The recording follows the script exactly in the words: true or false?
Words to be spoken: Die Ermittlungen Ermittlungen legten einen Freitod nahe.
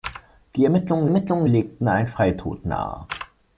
true